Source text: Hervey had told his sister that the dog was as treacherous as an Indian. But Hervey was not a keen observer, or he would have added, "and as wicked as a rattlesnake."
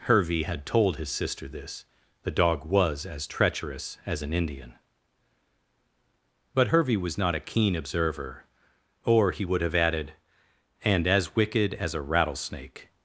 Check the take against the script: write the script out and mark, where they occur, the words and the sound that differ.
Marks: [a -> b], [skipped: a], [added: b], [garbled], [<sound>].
Hervey had told his sister [that -> this] the dog was as treacherous as an Indian. But Hervey was not a keen observer, or he would have added, "and as wicked as a rattlesnake."